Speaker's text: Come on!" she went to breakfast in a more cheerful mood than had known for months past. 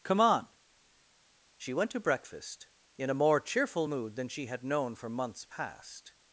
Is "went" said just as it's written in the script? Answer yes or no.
yes